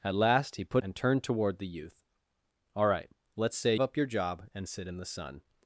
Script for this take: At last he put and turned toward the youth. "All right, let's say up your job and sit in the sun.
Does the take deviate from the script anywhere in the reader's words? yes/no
no